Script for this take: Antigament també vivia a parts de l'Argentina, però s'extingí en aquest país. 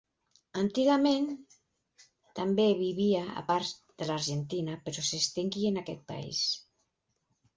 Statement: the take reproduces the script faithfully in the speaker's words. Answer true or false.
true